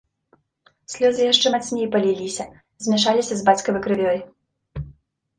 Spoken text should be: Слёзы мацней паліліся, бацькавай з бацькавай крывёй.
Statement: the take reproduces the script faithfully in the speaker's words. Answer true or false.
false